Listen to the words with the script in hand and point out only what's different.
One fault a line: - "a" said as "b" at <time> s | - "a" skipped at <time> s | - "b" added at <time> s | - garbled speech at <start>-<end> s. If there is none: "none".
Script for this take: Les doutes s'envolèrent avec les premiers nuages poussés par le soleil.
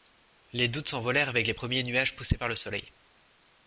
none